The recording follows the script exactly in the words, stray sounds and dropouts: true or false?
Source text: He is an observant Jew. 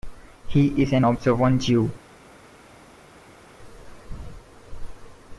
true